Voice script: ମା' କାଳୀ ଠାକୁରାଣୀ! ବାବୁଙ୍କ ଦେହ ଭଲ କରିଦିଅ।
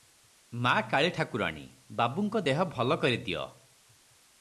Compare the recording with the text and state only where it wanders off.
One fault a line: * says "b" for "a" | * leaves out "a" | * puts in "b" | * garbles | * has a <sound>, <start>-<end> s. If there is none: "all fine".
all fine